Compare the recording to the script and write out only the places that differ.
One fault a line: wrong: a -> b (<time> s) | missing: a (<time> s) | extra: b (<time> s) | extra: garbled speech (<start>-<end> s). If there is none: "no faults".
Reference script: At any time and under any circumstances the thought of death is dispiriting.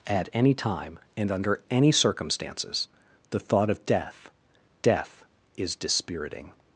extra: death (4.8 s)